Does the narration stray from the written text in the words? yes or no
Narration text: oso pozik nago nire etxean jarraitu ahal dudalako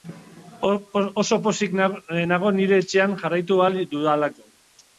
no